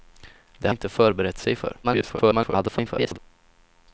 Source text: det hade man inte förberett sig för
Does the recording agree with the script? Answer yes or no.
no